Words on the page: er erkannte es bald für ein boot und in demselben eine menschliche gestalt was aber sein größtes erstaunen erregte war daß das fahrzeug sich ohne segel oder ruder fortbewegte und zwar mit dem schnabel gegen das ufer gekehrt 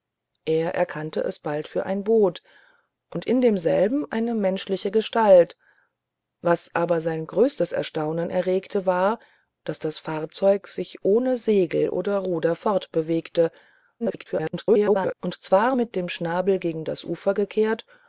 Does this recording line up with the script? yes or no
no